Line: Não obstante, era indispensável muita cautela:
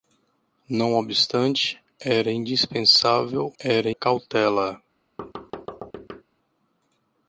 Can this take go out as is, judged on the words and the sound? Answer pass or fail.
fail